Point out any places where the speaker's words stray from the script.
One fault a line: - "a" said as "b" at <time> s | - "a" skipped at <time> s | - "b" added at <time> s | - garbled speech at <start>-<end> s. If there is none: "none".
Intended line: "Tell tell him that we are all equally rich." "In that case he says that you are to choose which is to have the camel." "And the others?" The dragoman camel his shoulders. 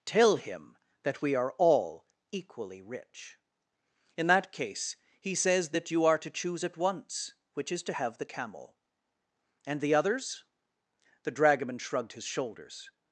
- "tell" skipped at 0.4 s
- "at once" added at 6.6 s
- "camel" said as "shrugged" at 11.8 s